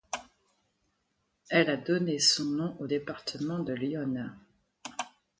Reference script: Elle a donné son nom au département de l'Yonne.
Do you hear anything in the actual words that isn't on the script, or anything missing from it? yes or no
no